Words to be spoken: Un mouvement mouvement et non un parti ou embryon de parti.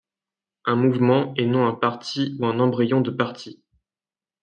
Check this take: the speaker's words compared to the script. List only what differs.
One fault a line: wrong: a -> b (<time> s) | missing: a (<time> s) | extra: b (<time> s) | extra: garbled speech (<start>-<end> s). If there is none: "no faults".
missing: mouvement (1.3 s)
extra: un (2.4 s)